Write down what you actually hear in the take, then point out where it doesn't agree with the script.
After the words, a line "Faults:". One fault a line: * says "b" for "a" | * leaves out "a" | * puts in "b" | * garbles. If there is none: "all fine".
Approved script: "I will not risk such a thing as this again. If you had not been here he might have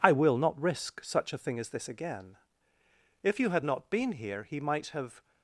"I will not risk such a thing as this again. If you had not been here he might have
Faults:
all fine